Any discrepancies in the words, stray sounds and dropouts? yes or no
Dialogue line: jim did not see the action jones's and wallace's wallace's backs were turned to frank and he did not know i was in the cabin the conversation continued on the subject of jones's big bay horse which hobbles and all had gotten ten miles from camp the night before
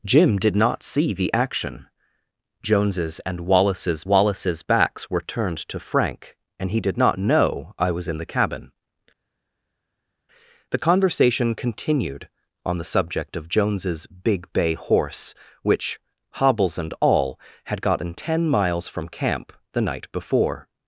no